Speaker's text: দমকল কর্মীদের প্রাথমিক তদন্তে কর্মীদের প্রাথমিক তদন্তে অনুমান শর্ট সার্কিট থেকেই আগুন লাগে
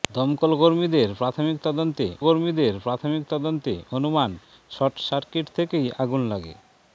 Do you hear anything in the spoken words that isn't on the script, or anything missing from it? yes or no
no